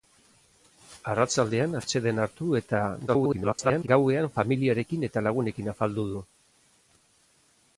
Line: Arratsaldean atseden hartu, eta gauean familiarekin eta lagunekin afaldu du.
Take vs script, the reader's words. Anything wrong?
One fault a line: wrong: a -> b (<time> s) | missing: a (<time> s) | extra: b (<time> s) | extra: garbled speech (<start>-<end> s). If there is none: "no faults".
extra: garbled speech (3.1-3.9 s)